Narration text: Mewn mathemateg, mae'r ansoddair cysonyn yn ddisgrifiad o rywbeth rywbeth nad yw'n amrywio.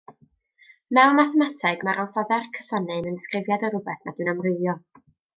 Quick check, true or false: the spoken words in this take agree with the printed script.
false